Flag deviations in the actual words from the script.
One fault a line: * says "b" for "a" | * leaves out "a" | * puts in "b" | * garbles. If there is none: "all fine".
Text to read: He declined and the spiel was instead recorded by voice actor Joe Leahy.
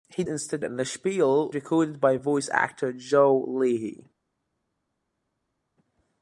* says "instead" for "declined"
* leaves out "was instead"